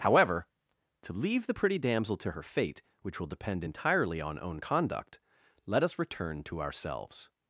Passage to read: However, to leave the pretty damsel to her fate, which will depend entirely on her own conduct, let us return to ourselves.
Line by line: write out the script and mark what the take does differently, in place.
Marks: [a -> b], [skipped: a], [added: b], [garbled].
However, to leave the pretty damsel to her fate, which will depend entirely on [skipped: her] own conduct, let us return to ourselves.